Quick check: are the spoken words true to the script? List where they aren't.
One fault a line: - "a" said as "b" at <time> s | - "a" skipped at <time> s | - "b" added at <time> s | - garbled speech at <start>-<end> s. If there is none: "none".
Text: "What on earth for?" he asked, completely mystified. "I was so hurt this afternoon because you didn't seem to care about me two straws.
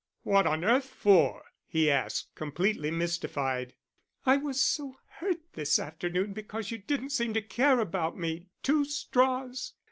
none